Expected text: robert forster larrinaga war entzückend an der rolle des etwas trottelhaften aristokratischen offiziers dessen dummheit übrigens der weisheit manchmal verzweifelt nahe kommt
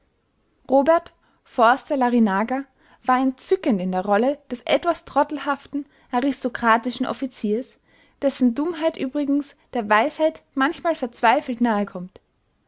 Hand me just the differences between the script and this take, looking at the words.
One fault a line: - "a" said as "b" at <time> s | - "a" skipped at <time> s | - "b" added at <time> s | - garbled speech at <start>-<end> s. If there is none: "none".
- "an" said as "in" at 3.8 s